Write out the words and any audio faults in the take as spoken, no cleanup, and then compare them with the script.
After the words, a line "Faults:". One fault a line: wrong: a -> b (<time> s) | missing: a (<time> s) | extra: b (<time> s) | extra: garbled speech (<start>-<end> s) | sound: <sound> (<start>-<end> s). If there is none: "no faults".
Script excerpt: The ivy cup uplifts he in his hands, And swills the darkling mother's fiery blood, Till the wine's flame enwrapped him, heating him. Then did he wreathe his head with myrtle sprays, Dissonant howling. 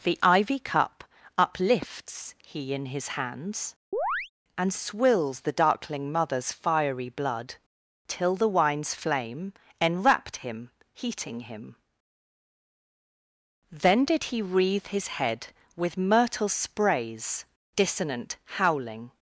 The ivy cup uplifts he in his hands, And swills the darkling mother's fiery blood, Till the wine's flame enwrapped him, heating him. Then did he wreathe his head with myrtle sprays, Dissonant howling.
Faults:
sound: chirp (3.9-4.3 s)